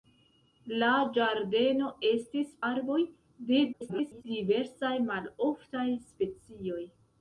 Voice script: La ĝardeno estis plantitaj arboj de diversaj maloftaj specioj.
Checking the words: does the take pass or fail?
fail